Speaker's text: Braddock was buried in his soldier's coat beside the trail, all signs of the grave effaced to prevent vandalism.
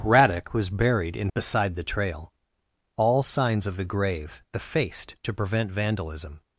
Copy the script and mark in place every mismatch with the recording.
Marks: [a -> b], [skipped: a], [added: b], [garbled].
Braddock was buried in [skipped: his soldier's coat] beside the trail, all signs of the grave effaced to prevent vandalism.